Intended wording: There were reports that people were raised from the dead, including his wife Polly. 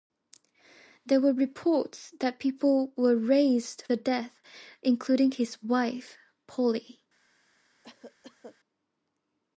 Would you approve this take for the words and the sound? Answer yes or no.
no